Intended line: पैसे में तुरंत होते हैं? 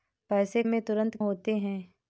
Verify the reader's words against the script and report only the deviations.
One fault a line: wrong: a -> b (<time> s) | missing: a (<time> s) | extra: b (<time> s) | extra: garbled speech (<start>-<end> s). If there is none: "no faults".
no faults